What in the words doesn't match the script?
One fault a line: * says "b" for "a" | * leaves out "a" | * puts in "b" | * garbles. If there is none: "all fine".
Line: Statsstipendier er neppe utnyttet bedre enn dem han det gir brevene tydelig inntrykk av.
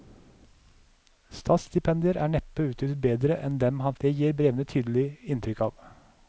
all fine